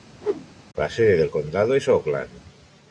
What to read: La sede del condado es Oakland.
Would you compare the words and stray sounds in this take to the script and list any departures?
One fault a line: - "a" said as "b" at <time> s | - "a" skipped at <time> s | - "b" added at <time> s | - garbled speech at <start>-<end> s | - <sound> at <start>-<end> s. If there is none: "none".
- whoosh at 0.2-0.5 s